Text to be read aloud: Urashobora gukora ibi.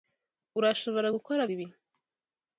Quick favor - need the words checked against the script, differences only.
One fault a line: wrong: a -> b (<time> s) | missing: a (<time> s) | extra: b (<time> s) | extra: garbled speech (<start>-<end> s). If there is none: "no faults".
no faults